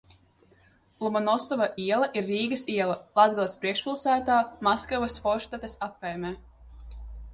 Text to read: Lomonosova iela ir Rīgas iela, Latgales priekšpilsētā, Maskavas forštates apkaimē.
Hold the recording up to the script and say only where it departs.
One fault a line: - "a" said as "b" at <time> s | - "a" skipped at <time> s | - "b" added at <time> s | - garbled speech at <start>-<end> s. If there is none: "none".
none